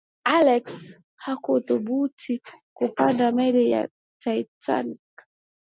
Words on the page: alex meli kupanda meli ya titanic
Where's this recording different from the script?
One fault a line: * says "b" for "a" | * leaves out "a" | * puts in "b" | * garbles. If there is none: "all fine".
* says "hakuthubutu" for "meli"